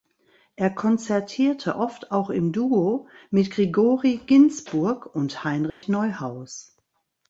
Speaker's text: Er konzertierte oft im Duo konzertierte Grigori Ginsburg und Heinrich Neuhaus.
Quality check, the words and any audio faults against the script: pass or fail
fail